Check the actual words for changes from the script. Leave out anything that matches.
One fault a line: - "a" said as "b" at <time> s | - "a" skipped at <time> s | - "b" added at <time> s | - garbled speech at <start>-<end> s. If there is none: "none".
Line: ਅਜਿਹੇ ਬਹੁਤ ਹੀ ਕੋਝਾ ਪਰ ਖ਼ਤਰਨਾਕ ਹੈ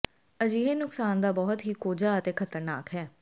- "ਨੁਕਸਾਨ ਦਾ" added at 0.8 s
- "ਪਰ" said as "ਅਤੇ" at 2.1 s